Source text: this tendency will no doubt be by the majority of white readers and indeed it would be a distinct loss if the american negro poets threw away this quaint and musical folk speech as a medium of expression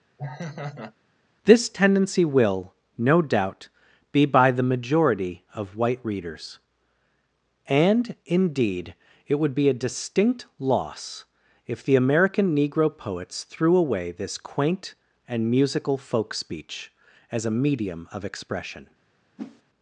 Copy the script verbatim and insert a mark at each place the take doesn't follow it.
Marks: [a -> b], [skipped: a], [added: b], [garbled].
this tendency will no doubt be by the majority of white readers and indeed it would be a distinct loss if the american negro poets threw away this quaint and musical folk speech as a medium of expression